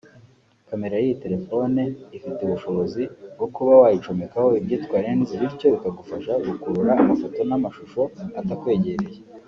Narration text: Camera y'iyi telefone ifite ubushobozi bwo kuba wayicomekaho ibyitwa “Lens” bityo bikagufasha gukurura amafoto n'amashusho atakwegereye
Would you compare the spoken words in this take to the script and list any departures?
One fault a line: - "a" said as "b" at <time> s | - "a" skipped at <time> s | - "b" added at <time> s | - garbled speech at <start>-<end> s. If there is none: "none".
none